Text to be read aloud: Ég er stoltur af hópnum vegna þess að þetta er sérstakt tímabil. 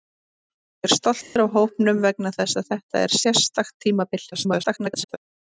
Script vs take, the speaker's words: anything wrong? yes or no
yes